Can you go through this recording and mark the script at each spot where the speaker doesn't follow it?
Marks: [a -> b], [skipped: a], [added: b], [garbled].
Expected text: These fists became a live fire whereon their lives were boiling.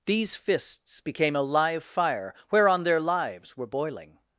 These fists became a live fire whereon their lives were boiling.